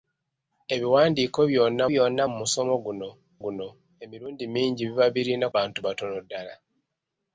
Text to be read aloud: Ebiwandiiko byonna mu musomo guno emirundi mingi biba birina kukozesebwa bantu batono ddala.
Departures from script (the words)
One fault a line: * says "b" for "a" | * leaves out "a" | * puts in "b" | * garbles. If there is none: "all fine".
* puts in "byonna"
* puts in "guno"
* leaves out "kukozesebwa"